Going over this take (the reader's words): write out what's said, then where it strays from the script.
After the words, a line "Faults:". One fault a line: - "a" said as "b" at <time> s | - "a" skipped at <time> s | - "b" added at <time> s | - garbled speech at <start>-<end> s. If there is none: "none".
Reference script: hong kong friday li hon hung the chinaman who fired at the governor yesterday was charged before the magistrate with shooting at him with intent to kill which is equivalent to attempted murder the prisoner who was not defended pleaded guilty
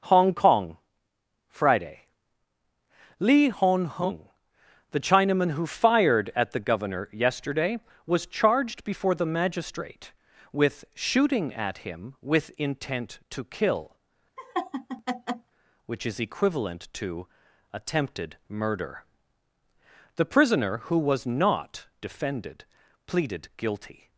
hong kong friday li hon hung the chinaman who fired at the governor yesterday was charged before the magistrate with shooting at him with intent to kill which is equivalent to attempted murder the prisoner who was not defended pleaded guilty
Faults:
none